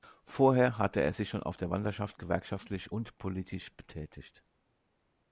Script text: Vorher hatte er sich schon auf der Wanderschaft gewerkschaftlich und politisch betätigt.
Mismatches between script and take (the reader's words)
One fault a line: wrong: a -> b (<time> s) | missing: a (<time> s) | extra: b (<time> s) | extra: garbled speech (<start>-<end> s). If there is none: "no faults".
no faults